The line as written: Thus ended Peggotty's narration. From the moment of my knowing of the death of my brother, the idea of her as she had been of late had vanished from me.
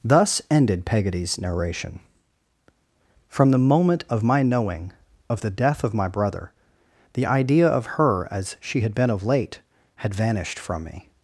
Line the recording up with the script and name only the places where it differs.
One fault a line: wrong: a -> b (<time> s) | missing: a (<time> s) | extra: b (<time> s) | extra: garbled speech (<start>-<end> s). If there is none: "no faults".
no faults